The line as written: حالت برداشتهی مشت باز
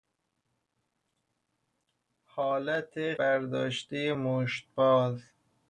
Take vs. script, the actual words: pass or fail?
pass